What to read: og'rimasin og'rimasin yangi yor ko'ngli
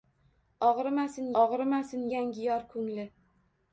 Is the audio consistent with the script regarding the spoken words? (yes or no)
yes